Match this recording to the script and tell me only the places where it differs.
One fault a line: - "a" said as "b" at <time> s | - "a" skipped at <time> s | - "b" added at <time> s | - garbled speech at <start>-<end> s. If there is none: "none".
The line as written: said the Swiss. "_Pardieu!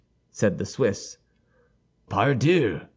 none